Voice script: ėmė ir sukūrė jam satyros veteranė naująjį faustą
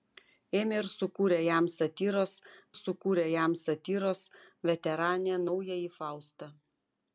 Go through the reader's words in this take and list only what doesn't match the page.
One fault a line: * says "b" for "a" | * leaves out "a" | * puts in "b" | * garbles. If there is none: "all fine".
* puts in "sukūrė jam satyros"